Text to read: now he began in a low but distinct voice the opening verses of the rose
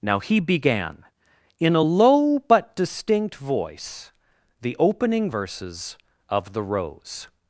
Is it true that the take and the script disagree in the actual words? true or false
false